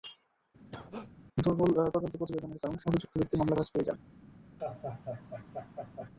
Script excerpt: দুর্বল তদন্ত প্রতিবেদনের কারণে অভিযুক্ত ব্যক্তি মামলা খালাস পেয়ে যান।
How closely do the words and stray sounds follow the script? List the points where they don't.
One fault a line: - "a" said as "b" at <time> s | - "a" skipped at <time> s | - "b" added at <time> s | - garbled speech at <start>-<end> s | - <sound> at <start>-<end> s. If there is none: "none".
- cough at 0.7-1.1 s
- laugh at 4.6-6.1 s